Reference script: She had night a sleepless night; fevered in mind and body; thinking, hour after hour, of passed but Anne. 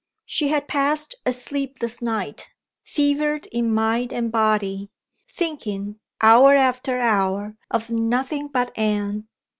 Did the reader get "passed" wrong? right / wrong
wrong